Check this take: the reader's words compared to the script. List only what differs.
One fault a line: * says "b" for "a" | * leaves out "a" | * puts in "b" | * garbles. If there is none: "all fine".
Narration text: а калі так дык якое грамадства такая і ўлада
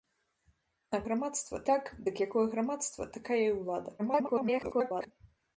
* says "грамадства" for "калі"
* garbles